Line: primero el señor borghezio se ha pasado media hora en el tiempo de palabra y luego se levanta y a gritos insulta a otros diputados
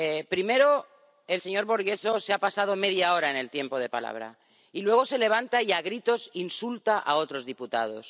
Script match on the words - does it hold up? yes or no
yes